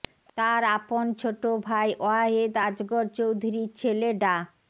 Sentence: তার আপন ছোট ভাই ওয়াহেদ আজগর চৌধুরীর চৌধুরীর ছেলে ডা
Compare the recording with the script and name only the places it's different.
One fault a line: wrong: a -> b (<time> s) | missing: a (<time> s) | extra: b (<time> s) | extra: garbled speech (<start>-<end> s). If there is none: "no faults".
missing: চৌধুরীর (3.7 s)